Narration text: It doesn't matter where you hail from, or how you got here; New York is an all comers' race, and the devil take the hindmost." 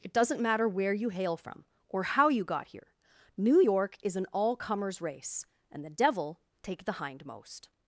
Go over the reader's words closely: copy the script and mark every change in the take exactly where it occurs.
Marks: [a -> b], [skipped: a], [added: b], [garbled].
It doesn't matter where you hail from, or how you got here; New York is an all comers' race, and the devil take the hindmost."